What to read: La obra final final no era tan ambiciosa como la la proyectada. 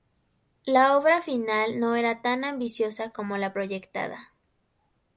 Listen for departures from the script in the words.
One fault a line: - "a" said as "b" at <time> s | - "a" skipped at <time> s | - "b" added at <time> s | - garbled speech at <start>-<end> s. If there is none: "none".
- "final" skipped at 1.8 s
- "la" skipped at 3.5 s